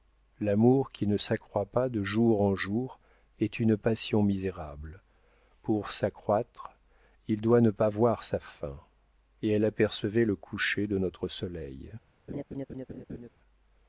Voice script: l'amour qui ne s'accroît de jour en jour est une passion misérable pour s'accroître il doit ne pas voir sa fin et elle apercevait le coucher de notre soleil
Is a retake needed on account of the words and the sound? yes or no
yes